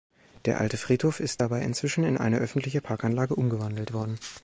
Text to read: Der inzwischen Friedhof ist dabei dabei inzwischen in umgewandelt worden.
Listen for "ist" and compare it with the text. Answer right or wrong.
right